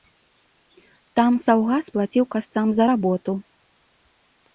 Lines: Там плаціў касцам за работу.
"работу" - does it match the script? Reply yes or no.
yes